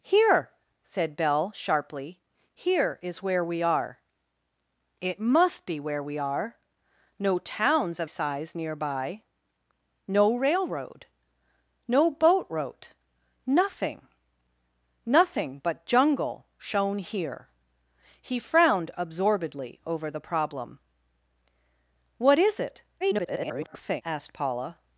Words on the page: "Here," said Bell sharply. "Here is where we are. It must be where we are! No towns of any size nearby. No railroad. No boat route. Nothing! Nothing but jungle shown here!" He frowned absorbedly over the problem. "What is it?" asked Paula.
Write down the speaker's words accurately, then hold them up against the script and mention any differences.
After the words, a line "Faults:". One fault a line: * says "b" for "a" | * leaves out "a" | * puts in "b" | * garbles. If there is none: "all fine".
"Here," said Bell sharply. "Here is where we are. It must be where we are! No towns of size nearby. No railroad. No boat route. Nothing! Nothing but jungle shown here!" He frowned absorbedly over the problem. "What is it?" [garbled] asked Paula.
Faults:
* leaves out "any"
* garbles